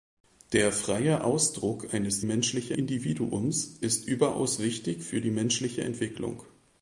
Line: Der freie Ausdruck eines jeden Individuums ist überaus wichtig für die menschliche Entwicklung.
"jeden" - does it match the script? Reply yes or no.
no